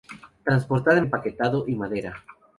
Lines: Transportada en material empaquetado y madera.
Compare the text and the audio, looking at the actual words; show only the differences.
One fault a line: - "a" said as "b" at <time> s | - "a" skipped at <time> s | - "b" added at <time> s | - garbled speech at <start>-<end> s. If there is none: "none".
- "material" skipped at 1.1 s